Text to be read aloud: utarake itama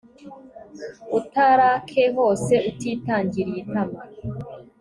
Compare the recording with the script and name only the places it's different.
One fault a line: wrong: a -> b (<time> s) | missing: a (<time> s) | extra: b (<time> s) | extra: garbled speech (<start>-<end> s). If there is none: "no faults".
extra: hose utitangiriye (2.2 s)